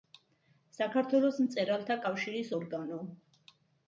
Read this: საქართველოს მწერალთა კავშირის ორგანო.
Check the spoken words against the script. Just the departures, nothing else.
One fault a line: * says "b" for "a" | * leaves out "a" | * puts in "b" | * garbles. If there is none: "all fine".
all fine